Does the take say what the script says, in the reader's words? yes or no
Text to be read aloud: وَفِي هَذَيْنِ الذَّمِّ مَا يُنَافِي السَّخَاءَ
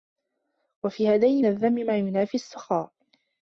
yes